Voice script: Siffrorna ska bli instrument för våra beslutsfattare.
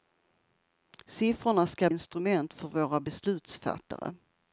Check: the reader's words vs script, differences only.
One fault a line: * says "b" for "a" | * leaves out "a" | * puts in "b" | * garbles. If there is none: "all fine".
* leaves out "bli"